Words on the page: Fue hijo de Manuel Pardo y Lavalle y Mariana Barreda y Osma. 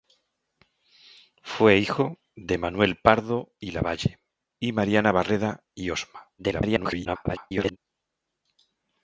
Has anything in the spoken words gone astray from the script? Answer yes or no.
yes